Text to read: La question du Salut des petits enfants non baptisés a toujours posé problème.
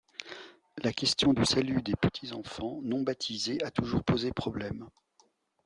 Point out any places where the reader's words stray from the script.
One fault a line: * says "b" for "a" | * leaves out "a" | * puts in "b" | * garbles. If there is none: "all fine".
all fine